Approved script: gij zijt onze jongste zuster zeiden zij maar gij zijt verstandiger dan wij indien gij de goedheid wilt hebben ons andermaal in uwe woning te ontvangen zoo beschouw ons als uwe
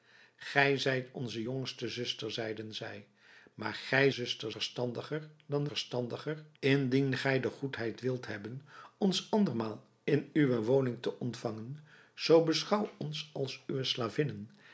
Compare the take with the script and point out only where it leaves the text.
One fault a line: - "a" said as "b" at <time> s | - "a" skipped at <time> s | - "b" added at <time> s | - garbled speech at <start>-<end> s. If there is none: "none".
- "zijt" said as "zuster" at 4.1 s
- "wij" said as "verstandiger" at 5.6 s